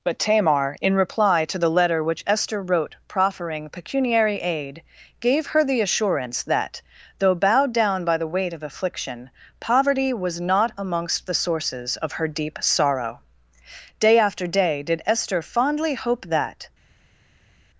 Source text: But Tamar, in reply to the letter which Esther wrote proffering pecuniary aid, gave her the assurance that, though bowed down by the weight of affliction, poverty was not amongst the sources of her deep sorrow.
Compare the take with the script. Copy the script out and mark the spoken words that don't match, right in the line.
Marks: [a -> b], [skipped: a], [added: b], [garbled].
But Tamar, in reply to the letter which Esther wrote proffering pecuniary aid, gave her the assurance that, though bowed down by the weight of affliction, poverty was not amongst the sources of her deep sorrow. [added: Day after day did Esther fondly hope that]